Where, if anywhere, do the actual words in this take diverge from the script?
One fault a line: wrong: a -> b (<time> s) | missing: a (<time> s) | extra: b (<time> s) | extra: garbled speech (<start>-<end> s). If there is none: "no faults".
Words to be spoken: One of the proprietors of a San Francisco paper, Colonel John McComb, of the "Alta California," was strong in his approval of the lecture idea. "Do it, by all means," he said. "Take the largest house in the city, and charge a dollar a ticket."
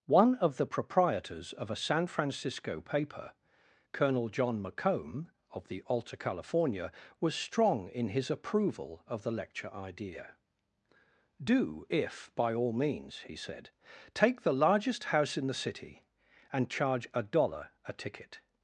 wrong: it -> if (11.9 s)